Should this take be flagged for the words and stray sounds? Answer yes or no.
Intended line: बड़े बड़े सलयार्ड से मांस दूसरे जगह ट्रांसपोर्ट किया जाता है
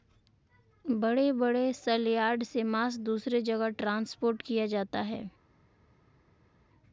no